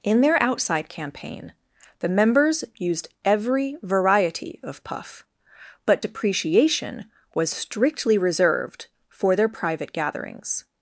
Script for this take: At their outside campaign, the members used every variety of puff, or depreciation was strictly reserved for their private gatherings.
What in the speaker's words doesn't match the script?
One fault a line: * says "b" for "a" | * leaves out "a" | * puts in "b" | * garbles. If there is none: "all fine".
* says "In" for "At"
* says "but" for "or"